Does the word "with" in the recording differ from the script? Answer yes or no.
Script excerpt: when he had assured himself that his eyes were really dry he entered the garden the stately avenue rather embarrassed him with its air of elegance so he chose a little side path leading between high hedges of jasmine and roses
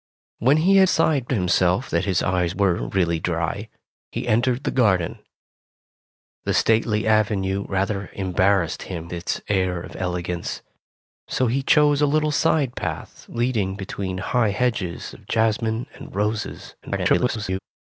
yes